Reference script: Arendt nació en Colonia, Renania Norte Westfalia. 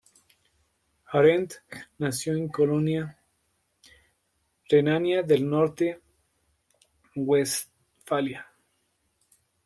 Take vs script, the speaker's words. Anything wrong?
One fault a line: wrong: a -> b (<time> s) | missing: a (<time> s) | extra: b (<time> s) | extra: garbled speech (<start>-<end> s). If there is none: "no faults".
extra: del (5.2 s)